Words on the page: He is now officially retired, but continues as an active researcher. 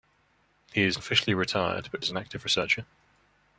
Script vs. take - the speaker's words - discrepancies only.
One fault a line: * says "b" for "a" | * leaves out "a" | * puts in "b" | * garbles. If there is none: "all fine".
* leaves out "now"
* leaves out "continues"